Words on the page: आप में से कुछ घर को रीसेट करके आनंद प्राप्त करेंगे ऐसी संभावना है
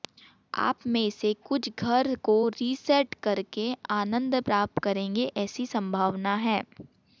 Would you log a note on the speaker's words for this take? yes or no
no